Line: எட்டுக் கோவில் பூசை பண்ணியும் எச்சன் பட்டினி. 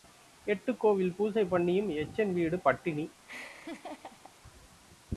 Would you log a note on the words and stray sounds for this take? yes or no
yes